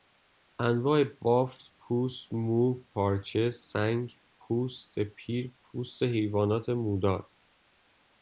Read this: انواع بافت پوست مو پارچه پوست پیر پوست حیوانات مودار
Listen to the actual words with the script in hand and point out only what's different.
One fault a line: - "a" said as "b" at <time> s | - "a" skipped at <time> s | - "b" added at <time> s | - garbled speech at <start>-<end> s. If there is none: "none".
- "سنگ" added at 3.5 s